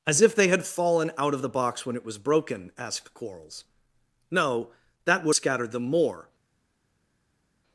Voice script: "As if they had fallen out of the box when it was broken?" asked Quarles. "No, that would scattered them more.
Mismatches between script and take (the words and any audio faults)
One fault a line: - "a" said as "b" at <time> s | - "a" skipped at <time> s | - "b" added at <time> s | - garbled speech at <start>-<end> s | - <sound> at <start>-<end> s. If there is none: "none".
none